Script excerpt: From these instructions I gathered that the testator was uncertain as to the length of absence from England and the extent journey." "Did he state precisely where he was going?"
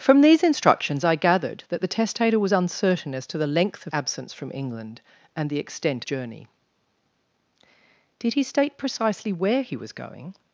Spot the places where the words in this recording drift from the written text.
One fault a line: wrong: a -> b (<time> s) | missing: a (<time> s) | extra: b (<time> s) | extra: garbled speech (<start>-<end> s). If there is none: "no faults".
no faults